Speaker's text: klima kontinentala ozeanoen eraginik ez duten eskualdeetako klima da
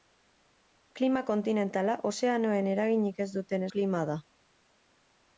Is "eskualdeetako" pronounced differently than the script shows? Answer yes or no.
yes